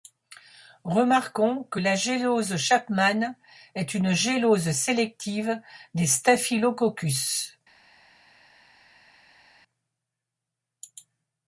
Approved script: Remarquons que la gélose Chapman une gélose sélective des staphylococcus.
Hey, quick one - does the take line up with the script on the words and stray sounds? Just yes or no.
no